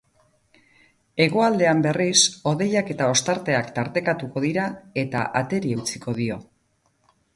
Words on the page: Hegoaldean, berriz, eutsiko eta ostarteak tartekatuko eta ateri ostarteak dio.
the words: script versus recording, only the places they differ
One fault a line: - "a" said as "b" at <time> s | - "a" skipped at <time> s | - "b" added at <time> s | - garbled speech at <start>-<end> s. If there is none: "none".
- "eutsiko" said as "hodeiak" at 2.5 s
- "dira" added at 4.5 s
- "ostarteak" said as "eutsiko" at 5.8 s